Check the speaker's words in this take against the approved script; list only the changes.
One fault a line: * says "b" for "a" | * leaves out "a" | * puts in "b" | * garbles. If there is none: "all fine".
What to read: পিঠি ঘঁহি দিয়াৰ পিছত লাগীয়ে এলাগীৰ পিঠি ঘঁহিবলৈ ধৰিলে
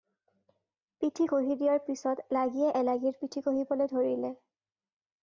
all fine